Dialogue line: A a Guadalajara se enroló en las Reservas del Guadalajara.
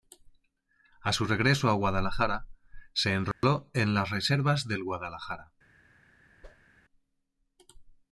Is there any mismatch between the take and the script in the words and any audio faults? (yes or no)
yes